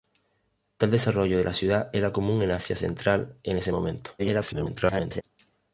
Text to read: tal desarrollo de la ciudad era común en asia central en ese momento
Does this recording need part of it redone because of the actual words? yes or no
yes